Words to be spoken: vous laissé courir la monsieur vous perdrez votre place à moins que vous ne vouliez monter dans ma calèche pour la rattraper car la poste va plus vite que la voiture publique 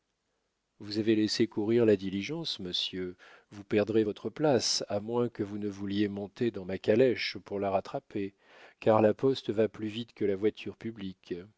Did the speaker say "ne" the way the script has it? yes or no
yes